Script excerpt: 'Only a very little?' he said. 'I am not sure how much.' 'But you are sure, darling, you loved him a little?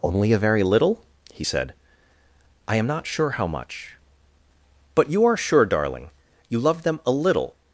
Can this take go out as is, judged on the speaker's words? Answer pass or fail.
fail